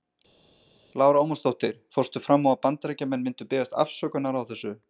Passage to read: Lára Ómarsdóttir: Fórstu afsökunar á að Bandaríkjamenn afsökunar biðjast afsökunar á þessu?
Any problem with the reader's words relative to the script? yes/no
yes